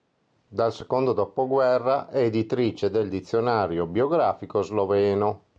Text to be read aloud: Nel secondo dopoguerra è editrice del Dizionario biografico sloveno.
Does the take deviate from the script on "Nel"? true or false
true